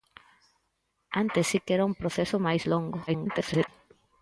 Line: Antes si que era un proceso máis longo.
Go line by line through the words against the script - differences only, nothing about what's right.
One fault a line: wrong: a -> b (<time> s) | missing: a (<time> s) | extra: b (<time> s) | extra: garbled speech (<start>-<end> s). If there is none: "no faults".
extra: garbled speech (3.1-3.7 s)